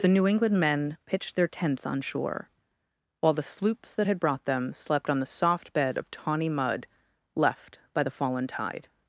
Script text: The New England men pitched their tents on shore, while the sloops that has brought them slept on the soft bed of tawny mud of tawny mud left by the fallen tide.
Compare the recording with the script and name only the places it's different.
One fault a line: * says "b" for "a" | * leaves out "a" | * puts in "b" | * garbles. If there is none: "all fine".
* says "had" for "has"
* leaves out "of tawny mud"